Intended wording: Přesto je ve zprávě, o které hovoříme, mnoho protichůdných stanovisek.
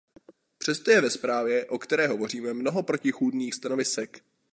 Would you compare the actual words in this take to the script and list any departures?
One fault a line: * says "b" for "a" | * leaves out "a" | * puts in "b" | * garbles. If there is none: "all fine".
all fine